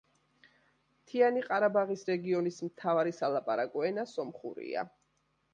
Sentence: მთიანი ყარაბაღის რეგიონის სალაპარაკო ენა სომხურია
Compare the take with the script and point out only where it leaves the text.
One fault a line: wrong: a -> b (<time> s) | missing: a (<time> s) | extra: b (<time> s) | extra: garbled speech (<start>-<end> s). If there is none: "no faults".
extra: მთავარი (2.7 s)